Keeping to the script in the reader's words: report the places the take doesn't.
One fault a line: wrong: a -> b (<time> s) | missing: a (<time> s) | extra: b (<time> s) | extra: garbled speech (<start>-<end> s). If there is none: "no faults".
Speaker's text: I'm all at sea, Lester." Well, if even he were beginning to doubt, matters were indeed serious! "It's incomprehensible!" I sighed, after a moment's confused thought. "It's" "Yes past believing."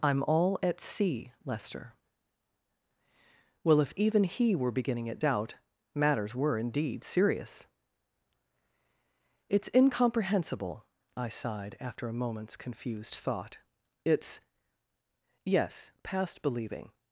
wrong: to -> at (5.1 s)